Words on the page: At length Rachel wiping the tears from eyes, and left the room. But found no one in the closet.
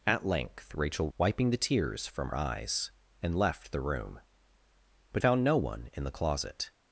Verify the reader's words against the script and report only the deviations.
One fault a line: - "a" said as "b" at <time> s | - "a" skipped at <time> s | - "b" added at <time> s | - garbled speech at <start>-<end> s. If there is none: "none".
none